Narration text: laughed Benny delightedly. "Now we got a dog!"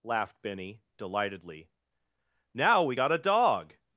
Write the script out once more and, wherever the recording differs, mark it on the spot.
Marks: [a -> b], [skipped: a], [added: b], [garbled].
laughed Benny delightedly. "Now we got a dog!"